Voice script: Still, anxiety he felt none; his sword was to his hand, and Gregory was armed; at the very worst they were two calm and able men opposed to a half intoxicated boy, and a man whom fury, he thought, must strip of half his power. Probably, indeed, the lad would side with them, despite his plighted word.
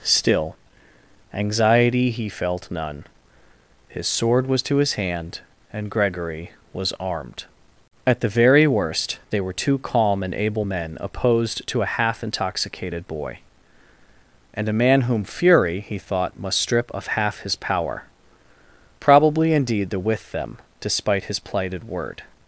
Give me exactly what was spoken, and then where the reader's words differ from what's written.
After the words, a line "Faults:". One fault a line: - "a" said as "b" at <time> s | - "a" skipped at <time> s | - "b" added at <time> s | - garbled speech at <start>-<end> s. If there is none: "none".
Still, anxiety he felt none; his sword was to his hand, and Gregory was armed; at the very worst they were two calm and able men opposed to a half intoxicated boy, and a man whom fury, he thought, must strip of half his power. Probably, indeed, the with them, despite his plighted word.
Faults:
- "lad would side" skipped at 20.0 s